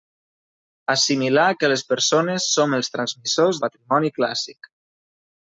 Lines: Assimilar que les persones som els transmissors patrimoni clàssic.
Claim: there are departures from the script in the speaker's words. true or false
false